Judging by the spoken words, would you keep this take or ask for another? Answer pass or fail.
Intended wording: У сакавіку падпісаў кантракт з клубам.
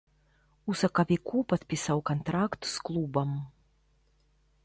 pass